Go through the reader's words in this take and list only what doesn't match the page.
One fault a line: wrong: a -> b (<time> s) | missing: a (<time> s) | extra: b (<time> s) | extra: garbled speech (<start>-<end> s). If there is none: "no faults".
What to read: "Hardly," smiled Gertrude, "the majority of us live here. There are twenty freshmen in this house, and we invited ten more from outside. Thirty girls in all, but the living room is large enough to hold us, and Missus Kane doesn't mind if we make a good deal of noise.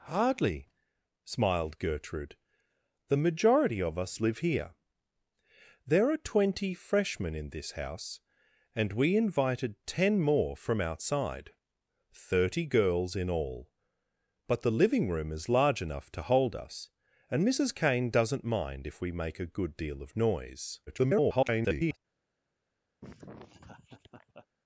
extra: garbled speech (20.9-22.0 s)